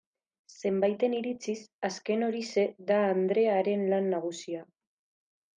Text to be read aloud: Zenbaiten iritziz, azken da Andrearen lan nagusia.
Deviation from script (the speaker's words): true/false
true